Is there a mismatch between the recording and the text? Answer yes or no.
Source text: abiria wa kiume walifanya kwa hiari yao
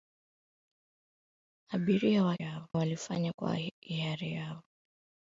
yes